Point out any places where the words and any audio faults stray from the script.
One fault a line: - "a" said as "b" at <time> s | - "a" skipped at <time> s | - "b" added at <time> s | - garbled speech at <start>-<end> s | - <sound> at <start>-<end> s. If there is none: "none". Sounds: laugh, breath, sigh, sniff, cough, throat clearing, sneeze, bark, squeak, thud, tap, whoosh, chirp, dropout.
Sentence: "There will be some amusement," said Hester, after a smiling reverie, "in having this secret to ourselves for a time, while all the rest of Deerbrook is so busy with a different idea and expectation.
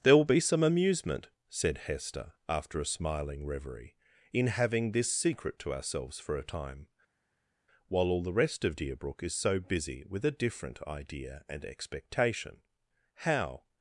- "How" added at 13.2 s